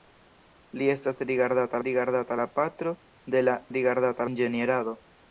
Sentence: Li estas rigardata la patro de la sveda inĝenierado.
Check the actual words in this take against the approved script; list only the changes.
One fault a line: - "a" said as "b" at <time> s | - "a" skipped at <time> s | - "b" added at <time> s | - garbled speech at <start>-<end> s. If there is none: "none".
- "rigardata" added at 1.9 s
- "sveda" said as "rigardata" at 3.8 s